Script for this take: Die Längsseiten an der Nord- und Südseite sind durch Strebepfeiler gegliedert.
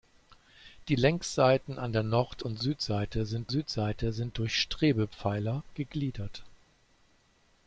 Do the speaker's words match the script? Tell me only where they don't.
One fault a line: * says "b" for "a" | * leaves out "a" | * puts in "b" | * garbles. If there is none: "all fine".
* puts in "Südseite sind"